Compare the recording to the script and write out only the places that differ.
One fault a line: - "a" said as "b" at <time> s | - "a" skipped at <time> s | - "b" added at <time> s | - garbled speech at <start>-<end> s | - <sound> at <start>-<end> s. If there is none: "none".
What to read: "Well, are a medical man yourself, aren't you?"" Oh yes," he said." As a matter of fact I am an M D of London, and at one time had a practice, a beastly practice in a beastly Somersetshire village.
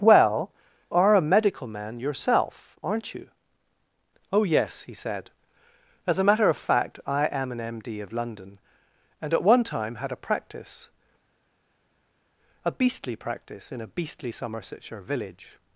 none